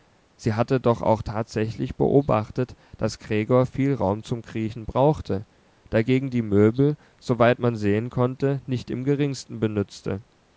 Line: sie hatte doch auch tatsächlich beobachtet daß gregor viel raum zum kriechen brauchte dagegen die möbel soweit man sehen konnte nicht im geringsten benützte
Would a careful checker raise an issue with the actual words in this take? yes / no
no